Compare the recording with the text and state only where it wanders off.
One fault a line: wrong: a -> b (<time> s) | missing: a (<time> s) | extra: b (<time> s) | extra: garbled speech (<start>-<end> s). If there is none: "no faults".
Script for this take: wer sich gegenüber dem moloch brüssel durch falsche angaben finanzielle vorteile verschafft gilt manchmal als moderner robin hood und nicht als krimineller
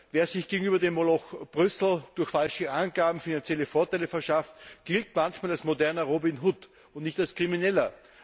no faults